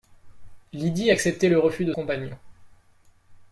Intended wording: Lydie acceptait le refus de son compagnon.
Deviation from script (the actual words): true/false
true